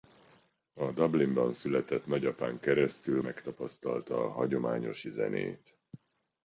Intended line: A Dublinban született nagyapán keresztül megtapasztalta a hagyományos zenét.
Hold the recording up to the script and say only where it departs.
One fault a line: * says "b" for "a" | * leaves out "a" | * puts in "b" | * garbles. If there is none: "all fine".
all fine